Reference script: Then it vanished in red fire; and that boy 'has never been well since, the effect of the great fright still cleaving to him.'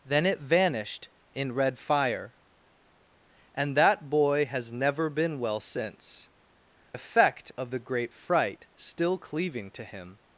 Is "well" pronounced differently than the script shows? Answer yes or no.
no